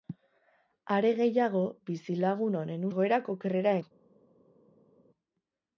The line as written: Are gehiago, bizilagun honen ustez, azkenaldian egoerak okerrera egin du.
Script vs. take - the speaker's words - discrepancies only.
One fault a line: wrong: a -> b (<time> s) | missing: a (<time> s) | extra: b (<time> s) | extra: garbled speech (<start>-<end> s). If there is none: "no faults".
missing: ustez azkenaldian (2.9 s)
missing: egin (3.8 s)